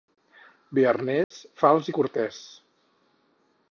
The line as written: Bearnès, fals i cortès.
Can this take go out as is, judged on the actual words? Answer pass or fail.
pass